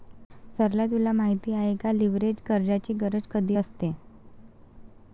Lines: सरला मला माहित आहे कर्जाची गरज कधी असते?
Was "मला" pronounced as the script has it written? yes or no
no